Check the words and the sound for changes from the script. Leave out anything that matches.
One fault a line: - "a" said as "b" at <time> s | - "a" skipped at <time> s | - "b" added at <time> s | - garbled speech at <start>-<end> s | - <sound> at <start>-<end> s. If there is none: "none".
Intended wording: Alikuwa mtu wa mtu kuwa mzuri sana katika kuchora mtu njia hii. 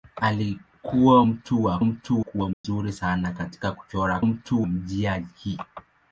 - dropout at 2.5-2.6 s